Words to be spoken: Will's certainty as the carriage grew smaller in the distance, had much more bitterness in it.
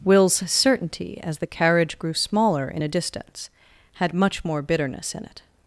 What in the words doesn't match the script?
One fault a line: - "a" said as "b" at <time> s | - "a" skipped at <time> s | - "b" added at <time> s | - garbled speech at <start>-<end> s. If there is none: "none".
- "the" said as "a" at 2.8 s